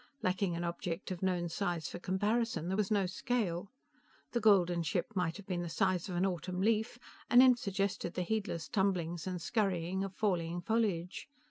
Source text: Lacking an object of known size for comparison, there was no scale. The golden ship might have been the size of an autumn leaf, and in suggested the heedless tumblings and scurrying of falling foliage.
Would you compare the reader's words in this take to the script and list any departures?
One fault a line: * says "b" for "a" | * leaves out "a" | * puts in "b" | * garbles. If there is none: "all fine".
all fine